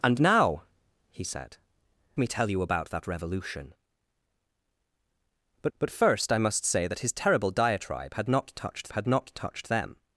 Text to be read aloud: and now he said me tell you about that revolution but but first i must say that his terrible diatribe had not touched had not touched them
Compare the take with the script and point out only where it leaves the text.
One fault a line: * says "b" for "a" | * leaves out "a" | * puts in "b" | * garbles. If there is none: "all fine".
all fine